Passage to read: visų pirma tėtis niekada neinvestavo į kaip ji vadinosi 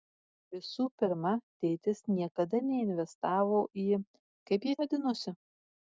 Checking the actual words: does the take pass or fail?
pass